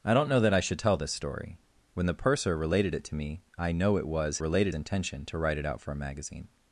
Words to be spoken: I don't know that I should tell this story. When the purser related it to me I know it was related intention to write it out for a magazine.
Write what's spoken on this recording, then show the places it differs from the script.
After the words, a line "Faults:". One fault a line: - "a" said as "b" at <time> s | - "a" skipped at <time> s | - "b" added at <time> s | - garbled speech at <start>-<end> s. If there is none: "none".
I don't know that I should tell this story. When the purser related it to me I know it was related intention to write it out for a magazine.
Faults:
none